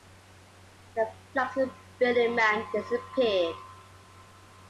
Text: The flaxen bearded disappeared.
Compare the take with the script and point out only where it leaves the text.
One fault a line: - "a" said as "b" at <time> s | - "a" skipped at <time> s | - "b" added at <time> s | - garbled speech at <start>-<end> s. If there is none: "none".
- "man" added at 2.4 s